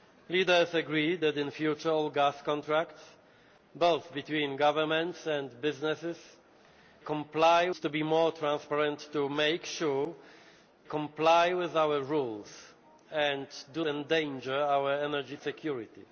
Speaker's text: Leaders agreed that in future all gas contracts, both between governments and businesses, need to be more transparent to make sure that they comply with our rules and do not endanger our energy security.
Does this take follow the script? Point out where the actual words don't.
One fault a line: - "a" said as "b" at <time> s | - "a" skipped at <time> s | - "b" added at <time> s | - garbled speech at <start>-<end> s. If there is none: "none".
- "need" said as "comply" at 7.0 s
- "that they" skipped at 10.1 s
- "not" skipped at 13.8 s